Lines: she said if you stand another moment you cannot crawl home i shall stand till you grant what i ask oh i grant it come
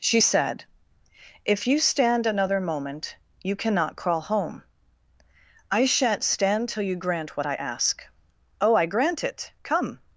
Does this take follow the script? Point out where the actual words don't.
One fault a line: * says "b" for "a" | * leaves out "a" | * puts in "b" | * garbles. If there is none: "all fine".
* says "shan't" for "shall"